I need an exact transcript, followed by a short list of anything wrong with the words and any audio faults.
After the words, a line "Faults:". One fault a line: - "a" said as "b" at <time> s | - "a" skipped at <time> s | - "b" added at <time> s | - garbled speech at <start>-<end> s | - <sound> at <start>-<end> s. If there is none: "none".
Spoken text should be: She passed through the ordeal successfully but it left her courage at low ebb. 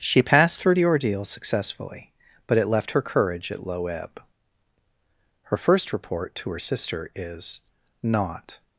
She passed through the ordeal successfully but it left her courage at low ebb. Her first report to her sister is not
Faults:
- "Her first report to her sister is not" added at 5.5 s